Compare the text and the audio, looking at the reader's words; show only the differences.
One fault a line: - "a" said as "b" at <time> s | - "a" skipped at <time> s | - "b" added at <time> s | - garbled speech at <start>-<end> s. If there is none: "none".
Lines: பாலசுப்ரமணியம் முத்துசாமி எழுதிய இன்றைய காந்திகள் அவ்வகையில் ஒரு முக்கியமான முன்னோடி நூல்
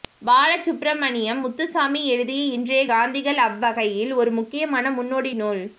none